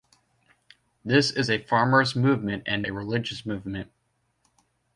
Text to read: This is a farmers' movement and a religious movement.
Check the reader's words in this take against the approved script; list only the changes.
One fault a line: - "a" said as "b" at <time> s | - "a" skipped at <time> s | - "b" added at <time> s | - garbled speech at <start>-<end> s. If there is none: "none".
none